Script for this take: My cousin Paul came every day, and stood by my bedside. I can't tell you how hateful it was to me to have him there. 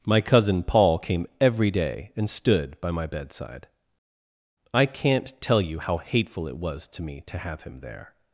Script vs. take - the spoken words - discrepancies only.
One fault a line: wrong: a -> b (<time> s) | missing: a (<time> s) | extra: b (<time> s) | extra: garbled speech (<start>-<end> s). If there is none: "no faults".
no faults